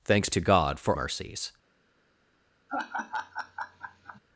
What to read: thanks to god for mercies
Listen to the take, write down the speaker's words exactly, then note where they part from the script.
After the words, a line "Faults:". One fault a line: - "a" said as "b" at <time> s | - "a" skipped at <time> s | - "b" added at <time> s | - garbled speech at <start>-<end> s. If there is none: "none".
thanks to god for mercies
Faults:
none